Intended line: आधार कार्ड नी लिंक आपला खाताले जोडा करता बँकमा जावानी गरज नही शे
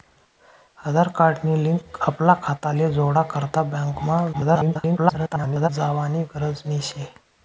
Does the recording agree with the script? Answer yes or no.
no